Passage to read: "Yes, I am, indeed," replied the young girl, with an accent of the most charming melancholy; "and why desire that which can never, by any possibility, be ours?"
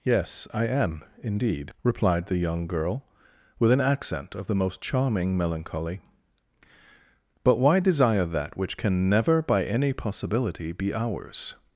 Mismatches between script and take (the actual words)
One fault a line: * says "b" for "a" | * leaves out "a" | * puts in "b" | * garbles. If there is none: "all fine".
* says "but" for "and"